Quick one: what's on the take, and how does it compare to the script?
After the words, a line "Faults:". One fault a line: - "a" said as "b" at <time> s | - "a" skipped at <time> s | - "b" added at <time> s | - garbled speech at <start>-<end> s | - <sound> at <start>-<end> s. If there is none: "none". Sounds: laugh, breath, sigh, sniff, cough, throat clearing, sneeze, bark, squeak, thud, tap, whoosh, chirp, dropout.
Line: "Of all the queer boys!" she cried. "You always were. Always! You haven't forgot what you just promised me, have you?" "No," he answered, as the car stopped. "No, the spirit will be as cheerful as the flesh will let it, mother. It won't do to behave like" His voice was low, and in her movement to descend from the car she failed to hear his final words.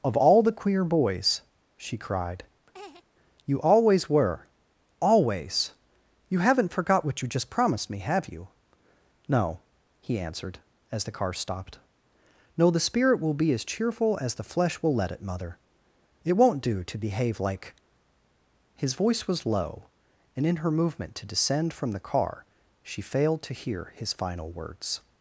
"Of all the queer boys!" she cried. "You always were. Always! You haven't forgot what you just promised me, have you?" "No," he answered, as the car stopped. "No, the spirit will be as cheerful as the flesh will let it, mother. It won't do to behave like" His voice was low, and in her movement to descend from the car she failed to hear his final words.
Faults:
- laugh at 2.7-3.0 s